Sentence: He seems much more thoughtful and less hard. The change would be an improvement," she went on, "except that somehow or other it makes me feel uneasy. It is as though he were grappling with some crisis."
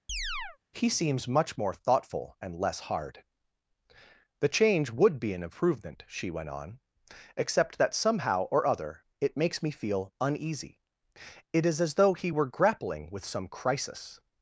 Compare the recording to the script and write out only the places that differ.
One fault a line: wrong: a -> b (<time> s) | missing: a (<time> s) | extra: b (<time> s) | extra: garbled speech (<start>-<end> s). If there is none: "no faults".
no faults